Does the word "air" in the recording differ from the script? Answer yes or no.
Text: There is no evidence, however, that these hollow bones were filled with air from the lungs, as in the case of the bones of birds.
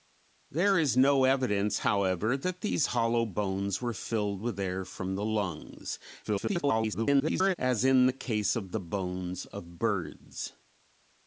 no